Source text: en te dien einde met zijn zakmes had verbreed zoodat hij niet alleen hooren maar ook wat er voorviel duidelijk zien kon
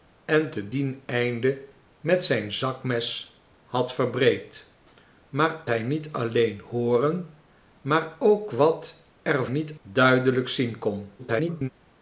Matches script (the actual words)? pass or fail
fail